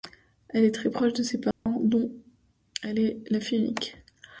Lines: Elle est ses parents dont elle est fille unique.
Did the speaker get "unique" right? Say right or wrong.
right